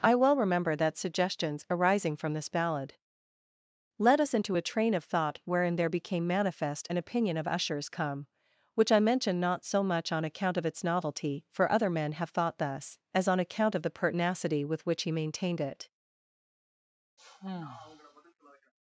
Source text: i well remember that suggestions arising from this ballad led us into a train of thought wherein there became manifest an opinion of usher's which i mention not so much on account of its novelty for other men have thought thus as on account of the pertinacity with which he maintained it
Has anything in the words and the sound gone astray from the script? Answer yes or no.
yes